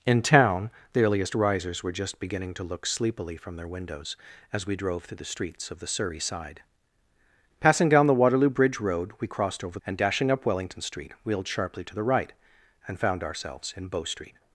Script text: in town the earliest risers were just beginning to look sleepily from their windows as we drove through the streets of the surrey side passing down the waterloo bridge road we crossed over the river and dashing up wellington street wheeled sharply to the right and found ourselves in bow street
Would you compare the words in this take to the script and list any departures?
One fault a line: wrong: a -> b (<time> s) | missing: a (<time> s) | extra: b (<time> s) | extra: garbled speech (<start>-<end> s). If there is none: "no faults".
missing: the river (9.8 s)